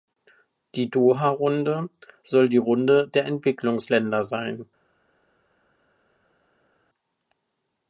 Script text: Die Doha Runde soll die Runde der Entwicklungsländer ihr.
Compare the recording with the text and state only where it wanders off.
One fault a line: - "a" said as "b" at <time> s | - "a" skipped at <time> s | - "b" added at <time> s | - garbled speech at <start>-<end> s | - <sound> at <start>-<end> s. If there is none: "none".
- "ihr" said as "sein" at 4.3 s